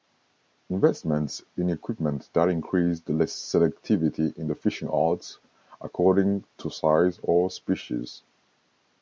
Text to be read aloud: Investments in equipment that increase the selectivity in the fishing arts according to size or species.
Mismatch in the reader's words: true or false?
false